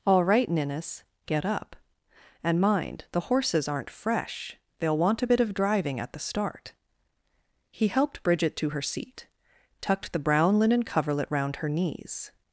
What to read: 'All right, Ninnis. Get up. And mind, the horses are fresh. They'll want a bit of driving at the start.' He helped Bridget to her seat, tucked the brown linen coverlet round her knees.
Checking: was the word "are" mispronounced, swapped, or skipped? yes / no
yes